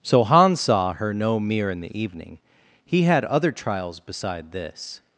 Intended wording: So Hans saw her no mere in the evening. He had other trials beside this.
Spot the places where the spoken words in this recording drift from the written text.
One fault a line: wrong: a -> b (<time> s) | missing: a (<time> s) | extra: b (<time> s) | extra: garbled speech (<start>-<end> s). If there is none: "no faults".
no faults